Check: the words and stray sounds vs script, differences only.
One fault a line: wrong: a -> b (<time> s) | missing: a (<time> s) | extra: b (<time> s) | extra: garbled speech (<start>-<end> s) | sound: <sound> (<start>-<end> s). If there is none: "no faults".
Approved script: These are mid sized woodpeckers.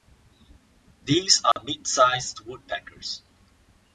sound: dropout (1.5-1.6 s)